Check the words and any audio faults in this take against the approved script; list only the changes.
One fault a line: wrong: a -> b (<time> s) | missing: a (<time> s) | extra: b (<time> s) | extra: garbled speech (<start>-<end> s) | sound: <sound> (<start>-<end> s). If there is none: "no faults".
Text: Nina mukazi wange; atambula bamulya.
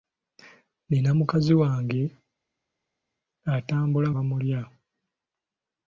no faults